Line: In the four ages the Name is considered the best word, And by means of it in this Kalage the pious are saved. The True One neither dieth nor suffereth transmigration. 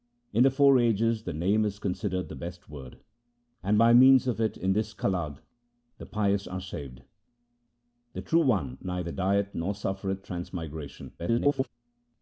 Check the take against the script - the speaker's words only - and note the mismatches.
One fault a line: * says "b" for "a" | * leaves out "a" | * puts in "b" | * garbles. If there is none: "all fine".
* garbles